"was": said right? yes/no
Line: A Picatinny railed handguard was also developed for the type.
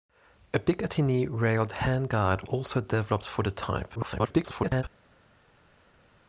no